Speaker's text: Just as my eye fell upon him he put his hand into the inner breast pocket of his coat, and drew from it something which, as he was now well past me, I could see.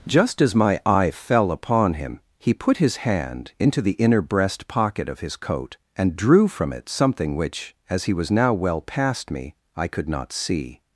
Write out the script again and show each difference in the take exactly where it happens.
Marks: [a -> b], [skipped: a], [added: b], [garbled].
Just as my eye fell upon him he put his hand into the inner breast pocket of his coat, and drew from it something which, as he was now well past me, I could [added: not] see.